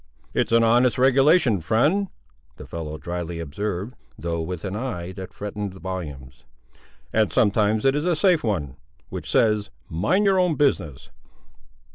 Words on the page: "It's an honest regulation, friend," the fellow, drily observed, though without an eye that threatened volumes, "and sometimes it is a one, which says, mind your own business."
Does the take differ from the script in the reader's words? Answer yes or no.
yes